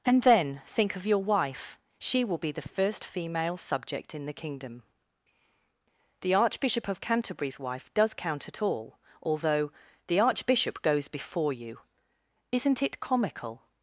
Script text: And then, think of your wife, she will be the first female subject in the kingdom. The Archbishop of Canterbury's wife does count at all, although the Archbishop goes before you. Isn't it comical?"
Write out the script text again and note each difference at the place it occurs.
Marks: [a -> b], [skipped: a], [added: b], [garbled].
And then, think of your wife, she will be the first female subject in the kingdom. The Archbishop of Canterbury's wife does count at all, although the Archbishop goes before you. Isn't it comical?"